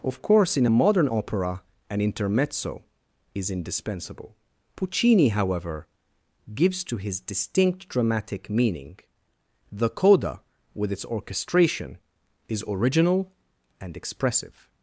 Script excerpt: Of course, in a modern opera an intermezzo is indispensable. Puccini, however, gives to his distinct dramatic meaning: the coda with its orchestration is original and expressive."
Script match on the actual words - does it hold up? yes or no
yes